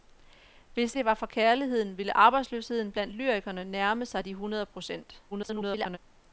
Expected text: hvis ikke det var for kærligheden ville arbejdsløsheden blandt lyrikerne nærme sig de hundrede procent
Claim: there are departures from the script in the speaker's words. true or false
true